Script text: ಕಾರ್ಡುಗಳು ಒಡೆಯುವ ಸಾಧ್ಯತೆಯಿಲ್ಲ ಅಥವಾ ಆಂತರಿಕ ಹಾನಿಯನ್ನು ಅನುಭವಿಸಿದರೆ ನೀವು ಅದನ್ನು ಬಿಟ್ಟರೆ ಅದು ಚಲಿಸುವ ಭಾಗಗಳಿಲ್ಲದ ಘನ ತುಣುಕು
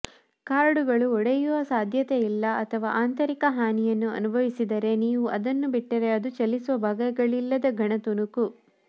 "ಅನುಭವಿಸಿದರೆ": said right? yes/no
yes